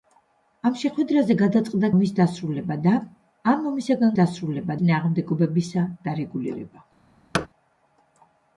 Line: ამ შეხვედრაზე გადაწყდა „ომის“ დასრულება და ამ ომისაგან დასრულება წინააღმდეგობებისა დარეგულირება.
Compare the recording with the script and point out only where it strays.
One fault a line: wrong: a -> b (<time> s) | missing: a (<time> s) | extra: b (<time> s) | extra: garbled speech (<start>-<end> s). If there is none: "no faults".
no faults